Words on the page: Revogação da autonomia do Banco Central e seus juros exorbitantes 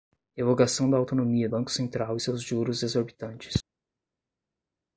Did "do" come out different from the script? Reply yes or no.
yes